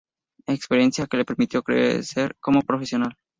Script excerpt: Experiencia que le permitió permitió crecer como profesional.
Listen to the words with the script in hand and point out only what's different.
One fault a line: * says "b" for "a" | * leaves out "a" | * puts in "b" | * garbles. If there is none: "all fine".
* leaves out "permitió"